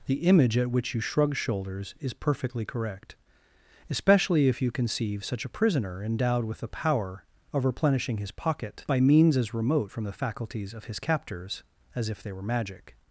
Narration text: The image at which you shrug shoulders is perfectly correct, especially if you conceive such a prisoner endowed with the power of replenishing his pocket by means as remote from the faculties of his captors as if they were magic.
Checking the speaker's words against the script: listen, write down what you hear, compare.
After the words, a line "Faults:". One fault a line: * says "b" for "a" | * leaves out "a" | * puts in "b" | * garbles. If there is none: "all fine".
The image at which you shrug shoulders is perfectly correct, especially if you conceive such a prisoner endowed with the power of replenishing his pocket by means as remote from the faculties of his captors as if they were magic.
Faults:
all fine